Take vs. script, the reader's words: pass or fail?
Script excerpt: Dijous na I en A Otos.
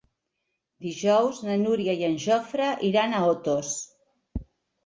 fail